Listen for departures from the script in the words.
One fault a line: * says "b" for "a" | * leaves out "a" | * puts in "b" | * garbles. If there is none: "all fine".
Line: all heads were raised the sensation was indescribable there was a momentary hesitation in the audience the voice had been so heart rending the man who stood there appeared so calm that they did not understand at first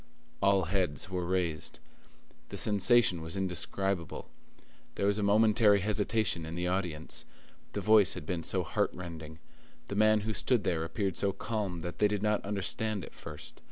all fine